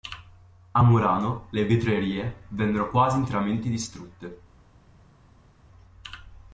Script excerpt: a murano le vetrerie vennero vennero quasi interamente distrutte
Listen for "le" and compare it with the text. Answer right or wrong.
right